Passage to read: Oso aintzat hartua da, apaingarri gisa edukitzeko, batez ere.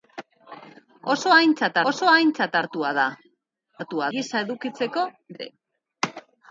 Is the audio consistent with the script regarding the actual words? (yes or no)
no